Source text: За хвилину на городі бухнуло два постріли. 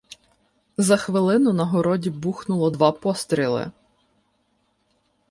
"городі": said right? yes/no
yes